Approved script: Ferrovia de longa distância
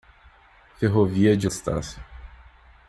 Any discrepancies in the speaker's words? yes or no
yes